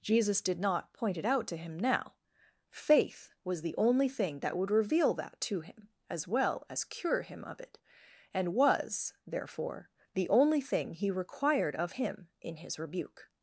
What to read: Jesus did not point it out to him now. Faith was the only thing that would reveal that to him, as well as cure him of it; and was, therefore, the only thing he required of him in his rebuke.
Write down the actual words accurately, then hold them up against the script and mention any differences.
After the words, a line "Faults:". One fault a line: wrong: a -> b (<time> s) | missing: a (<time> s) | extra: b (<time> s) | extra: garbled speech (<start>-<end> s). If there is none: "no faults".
Jesus did not point it out to him now. Faith was the only thing that would reveal that to him, as well as cure him of it; and was, therefore, the only thing he required of him in his rebuke.
Faults:
no faults